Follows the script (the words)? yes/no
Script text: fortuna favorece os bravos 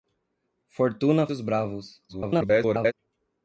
no